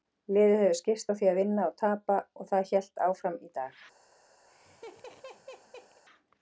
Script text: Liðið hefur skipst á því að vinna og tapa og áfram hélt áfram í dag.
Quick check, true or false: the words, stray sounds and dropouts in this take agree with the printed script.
false